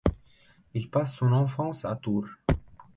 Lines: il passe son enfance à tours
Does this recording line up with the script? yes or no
yes